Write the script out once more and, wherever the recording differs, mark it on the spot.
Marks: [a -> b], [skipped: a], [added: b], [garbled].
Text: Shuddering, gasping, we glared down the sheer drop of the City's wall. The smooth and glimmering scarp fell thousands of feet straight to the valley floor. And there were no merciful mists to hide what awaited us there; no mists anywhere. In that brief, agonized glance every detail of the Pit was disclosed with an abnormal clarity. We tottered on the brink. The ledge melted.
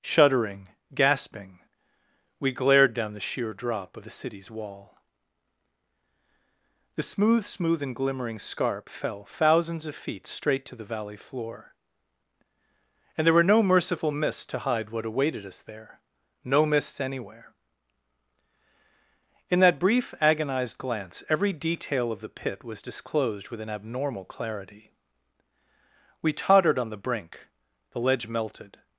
Shuddering, gasping, we glared down the sheer drop of the City's wall. The smooth [added: smooth] and glimmering scarp fell thousands of feet straight to the valley floor. And there were no merciful mists to hide what awaited us there; no mists anywhere. In that brief, agonized glance every detail of the Pit was disclosed with an abnormal clarity. We tottered on the brink. The ledge melted.